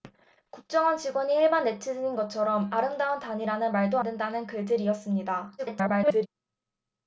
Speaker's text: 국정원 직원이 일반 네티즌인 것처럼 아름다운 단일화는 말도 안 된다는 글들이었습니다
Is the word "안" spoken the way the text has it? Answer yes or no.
no